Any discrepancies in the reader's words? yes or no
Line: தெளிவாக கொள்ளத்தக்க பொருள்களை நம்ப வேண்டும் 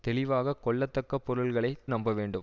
no